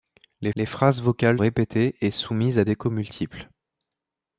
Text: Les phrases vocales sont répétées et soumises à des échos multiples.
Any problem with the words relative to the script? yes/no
yes